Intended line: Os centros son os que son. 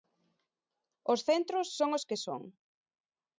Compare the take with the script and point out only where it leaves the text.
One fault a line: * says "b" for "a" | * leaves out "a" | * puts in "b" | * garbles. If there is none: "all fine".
all fine